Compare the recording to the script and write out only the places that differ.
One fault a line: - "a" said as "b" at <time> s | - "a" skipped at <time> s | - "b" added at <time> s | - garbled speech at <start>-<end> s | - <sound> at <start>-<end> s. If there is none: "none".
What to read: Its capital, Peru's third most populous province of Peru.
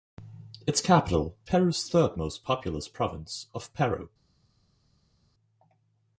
none